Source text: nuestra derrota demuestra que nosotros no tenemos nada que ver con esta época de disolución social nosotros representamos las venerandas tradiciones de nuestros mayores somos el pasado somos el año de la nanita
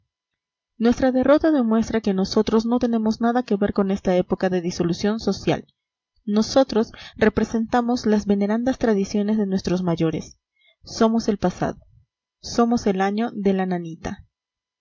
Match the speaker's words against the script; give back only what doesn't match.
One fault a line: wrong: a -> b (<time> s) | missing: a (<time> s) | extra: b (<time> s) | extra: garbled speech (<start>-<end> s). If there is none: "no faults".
no faults